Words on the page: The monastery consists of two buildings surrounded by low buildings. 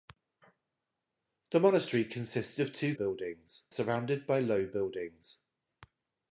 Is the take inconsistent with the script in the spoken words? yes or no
no